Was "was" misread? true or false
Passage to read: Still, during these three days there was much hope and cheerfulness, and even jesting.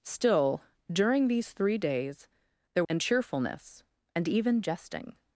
true